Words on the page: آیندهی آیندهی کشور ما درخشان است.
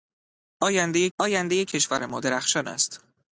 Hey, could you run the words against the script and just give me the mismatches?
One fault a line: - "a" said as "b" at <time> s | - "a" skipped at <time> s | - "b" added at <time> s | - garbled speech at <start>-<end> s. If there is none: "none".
none